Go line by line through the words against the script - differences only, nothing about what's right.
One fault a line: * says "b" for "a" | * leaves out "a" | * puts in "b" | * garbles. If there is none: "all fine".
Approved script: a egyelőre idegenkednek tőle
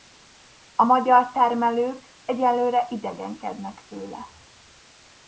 * puts in "magyar termelők"